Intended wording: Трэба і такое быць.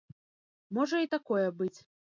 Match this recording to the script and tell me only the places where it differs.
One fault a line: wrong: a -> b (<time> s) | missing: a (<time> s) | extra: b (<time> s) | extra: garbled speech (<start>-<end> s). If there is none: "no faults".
wrong: Трэба -> Можа (0.8 s)